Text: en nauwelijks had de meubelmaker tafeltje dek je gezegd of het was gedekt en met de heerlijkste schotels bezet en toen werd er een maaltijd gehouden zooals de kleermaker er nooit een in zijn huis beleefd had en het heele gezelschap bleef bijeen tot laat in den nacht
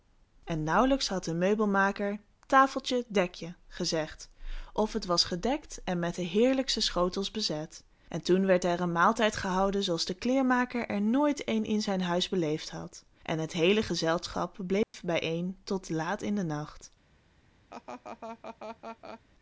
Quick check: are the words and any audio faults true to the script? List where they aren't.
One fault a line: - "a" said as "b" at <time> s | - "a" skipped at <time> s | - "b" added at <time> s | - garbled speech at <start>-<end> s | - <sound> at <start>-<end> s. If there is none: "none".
- dropout at 14.8-14.9 s
- laugh at 17.7-19.2 s